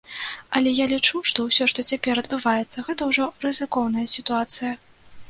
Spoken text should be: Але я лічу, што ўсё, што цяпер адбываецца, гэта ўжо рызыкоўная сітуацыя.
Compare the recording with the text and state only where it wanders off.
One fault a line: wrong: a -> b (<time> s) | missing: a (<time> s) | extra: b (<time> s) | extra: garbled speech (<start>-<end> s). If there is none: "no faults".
no faults